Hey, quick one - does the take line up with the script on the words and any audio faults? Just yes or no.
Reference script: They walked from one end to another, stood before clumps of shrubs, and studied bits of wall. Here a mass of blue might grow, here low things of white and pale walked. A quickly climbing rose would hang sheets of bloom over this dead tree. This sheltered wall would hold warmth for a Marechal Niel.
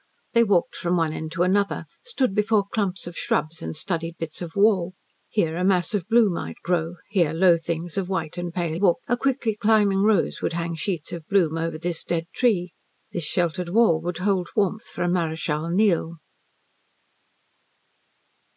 yes